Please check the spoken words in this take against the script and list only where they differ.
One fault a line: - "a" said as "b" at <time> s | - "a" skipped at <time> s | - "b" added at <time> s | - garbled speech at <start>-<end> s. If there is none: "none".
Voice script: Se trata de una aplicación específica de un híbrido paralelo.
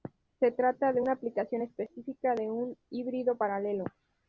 none